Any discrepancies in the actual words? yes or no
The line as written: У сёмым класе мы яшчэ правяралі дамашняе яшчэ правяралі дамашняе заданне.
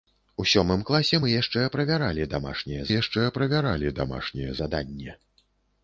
no